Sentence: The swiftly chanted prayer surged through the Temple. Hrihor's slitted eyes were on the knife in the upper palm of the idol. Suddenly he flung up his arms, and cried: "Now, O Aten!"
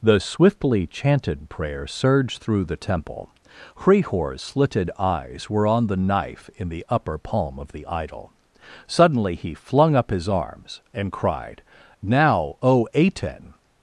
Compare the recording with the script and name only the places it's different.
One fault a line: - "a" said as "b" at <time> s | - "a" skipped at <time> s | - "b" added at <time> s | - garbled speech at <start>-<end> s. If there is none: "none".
none